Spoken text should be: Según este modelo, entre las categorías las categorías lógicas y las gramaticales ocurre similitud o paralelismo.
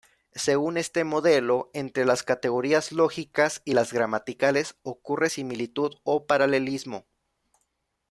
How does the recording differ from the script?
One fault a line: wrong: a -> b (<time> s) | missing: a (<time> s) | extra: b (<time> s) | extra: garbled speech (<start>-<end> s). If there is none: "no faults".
missing: las categorías (2.9 s)